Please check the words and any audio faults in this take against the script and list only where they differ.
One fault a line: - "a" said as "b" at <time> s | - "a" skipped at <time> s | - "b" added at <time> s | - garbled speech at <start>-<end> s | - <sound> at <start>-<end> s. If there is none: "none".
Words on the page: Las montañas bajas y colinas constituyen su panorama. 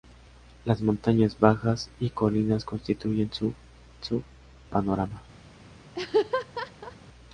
- "su" added at 4.0 s
- laugh at 5.9-7.0 s